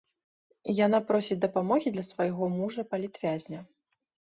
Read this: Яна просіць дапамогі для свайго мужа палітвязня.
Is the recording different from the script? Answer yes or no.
no